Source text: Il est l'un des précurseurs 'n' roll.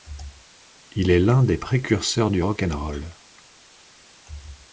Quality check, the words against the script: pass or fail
fail